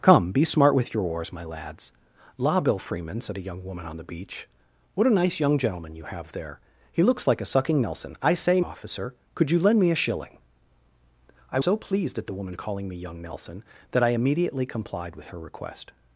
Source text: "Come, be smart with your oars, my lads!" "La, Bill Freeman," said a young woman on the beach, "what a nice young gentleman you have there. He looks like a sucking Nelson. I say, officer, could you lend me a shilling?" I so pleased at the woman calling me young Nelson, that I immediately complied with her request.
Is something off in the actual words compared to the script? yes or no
no